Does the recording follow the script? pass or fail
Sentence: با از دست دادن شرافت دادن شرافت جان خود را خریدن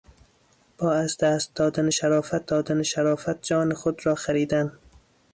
pass